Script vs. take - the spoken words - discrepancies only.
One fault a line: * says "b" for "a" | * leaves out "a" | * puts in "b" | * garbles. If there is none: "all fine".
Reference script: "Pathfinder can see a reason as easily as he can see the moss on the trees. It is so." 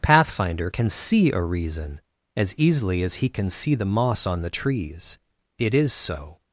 all fine